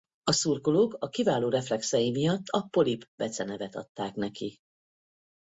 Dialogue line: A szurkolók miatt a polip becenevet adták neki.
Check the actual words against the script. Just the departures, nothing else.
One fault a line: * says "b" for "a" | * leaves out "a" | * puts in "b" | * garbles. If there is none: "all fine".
* puts in "a kiváló reflexei"